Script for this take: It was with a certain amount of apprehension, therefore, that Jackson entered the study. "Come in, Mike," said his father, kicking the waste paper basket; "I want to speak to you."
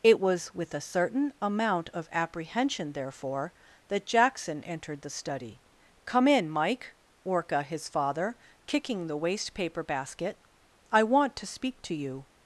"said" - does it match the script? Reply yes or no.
no